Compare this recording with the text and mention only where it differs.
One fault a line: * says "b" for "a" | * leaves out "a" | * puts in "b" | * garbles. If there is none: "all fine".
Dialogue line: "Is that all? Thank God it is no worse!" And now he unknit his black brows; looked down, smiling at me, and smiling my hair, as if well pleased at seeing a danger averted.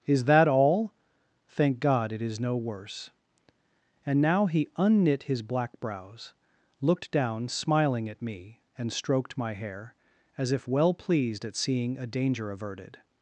* says "stroked" for "smiling"